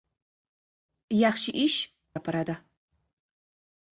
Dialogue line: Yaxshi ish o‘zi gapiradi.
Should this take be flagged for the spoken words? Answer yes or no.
yes